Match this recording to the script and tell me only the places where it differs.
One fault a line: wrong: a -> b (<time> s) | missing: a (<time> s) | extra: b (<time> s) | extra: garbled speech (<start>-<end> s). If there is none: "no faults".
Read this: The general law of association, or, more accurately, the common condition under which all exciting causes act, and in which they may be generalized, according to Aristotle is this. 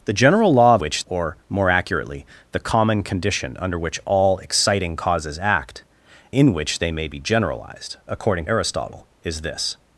wrong: association -> which (0.8 s)
missing: and (5.8 s)
missing: to (8.5 s)